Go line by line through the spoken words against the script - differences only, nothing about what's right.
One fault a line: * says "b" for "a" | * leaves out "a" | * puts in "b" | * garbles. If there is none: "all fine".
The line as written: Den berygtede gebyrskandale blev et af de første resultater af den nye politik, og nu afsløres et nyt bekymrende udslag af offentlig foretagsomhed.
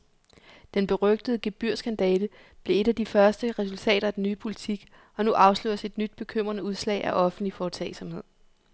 all fine